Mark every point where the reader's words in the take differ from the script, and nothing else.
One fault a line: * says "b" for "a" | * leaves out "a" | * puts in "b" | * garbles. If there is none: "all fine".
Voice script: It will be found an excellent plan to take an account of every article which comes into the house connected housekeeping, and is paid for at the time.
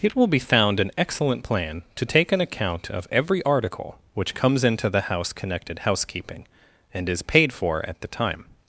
all fine